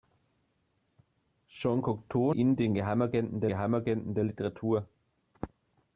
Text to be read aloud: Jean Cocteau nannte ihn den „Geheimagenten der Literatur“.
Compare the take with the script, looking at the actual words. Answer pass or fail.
fail